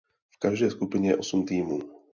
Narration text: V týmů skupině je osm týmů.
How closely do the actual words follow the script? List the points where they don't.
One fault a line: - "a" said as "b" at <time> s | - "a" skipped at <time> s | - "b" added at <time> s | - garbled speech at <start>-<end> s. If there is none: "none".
- "týmů" said as "každé" at 0.4 s